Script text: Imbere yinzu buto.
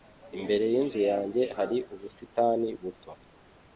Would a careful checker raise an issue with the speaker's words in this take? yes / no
yes